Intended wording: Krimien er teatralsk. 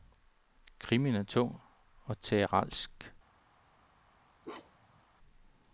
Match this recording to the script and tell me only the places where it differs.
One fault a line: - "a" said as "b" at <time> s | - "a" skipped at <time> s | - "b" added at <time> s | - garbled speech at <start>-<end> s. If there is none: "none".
- "tung og" added at 1.2 s